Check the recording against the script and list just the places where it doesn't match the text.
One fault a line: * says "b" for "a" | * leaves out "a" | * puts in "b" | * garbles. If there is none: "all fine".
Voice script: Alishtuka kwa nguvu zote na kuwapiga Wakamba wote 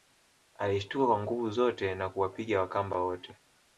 all fine